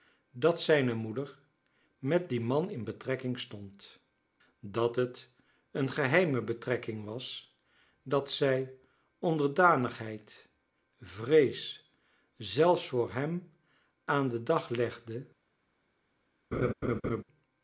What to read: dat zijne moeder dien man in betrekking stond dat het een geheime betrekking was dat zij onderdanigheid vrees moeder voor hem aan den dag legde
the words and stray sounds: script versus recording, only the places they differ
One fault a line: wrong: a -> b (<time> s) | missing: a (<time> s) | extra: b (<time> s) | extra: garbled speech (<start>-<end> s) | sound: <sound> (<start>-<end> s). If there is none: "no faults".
extra: met (2.0 s)
wrong: moeder -> zelfs (12.4 s)
sound: laugh (16.5-17.2 s)